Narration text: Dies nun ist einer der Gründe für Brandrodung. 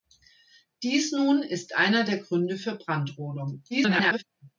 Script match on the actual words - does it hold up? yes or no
no